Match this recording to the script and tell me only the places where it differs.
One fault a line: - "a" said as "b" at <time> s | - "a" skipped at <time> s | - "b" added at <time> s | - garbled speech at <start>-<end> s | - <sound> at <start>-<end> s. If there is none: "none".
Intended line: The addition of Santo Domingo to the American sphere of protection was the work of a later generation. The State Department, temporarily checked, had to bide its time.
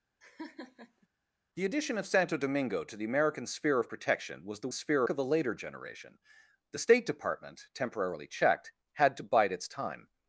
- laugh at 0.2-1.1 s
- "work" said as "sphere" at 4.7 s